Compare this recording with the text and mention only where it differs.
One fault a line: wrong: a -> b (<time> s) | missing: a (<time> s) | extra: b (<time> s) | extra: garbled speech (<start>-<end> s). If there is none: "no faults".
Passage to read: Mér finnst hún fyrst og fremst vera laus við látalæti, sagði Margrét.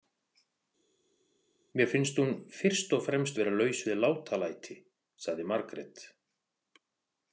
no faults